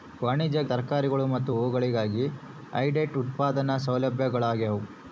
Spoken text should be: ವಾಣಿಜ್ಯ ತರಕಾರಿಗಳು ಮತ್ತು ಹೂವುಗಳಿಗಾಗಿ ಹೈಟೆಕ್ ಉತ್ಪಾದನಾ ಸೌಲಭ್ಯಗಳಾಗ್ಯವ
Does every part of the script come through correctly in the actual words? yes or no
yes